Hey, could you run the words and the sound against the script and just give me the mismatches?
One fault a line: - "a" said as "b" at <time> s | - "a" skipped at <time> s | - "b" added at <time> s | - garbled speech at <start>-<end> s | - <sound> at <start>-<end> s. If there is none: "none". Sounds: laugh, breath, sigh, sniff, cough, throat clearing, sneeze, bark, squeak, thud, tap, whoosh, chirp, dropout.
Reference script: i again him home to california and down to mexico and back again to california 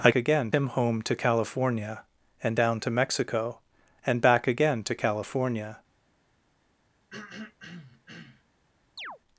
- throat clearing at 7.1-8.4 s
- chirp at 9.0-9.2 s